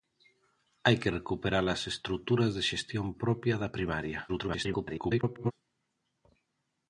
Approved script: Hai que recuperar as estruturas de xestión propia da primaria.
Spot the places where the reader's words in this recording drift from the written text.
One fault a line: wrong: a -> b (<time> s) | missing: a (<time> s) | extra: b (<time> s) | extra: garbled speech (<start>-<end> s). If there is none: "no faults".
extra: garbled speech (4.3-5.5 s)